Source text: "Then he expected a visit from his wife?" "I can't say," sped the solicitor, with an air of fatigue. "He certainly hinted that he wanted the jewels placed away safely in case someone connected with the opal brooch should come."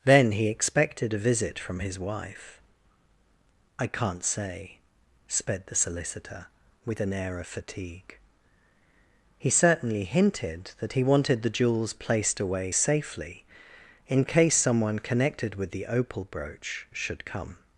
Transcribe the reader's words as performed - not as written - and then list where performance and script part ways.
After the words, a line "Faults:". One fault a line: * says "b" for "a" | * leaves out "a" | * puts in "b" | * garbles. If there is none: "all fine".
"Then he expected a visit from his wife?" "I can't say," sped the solicitor, with an air of fatigue. "He certainly hinted that he wanted the jewels placed away safely in case someone connected with the opal brooch should come."
Faults:
all fine